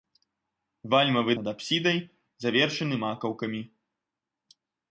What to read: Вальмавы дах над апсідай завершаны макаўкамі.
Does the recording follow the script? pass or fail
fail